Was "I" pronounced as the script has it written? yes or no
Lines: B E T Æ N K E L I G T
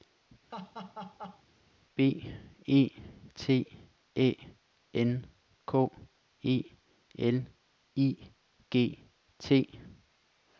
yes